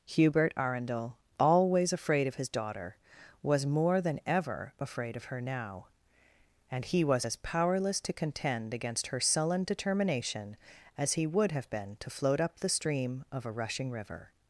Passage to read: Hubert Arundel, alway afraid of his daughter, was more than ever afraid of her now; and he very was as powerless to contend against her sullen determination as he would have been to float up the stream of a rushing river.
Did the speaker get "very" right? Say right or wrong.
wrong